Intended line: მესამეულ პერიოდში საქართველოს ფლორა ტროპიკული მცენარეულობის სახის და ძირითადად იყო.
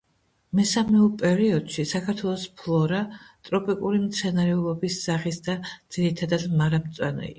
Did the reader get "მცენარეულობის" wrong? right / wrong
right